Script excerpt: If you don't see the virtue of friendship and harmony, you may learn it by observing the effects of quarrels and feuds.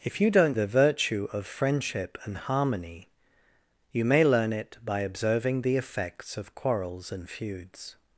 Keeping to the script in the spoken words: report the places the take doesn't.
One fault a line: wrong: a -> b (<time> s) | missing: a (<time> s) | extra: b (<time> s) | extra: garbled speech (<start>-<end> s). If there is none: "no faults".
missing: see (0.6 s)